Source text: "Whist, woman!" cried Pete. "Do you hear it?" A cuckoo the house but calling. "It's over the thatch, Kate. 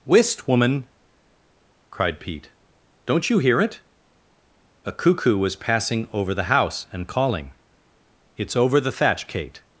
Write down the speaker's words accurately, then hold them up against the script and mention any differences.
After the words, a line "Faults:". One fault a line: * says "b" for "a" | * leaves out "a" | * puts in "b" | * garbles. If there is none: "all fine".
"Whist, woman!" cried Pete. "Don't you hear it?" A cuckoo was passing over the house and calling. "It's over the thatch, Kate.
Faults:
* says "Don't" for "Do"
* puts in "was passing over"
* says "and" for "but"